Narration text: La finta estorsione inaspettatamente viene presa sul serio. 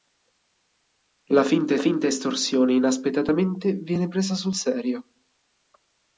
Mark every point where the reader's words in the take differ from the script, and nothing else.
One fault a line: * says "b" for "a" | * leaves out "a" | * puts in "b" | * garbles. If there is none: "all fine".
* puts in "finta"